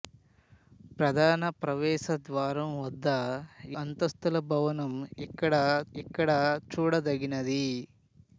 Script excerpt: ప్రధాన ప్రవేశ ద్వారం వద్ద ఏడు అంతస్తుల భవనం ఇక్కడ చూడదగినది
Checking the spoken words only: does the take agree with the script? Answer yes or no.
no